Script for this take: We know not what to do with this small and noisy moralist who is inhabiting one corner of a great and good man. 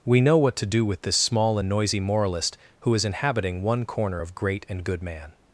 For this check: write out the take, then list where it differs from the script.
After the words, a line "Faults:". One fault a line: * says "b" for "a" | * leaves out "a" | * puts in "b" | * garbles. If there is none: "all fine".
We know what to do with this small and noisy moralist who is inhabiting one corner of great and good man.
Faults:
* leaves out "not"
* leaves out "a"